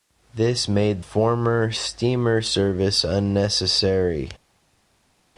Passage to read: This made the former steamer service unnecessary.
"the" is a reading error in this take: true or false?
true